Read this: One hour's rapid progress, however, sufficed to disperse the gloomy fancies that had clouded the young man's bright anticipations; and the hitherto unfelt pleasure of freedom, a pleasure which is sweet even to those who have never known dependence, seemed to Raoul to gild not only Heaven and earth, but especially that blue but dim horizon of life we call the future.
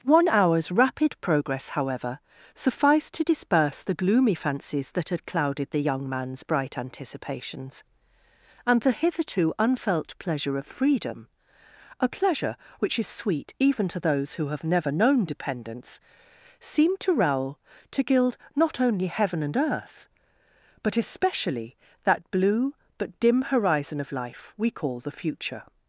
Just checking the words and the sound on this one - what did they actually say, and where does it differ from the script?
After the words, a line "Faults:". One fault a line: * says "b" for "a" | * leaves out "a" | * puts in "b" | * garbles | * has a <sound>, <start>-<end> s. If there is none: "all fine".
One hour's rapid progress, however, sufficed to disperse the gloomy fancies that had clouded the young man's bright anticipations; and the hitherto unfelt pleasure of freedom, a pleasure which is sweet even to those who have never known dependence, seemed to Raoul to gild not only Heaven and earth, but especially that blue but dim horizon of life we call the future.
Faults:
all fine